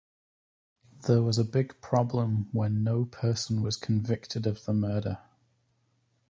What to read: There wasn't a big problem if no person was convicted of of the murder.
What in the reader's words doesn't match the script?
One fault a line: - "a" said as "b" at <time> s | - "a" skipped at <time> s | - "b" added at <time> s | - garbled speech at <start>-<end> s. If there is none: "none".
- "wasn't" said as "was" at 1.2 s
- "if" said as "when" at 2.5 s
- "of" skipped at 4.6 s